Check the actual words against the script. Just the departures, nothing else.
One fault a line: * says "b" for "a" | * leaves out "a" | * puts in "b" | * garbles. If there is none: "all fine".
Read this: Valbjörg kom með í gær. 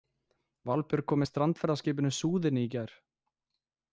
* puts in "strandferðaskipinu Súðinni"